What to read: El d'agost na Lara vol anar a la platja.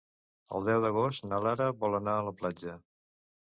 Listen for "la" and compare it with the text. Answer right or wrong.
right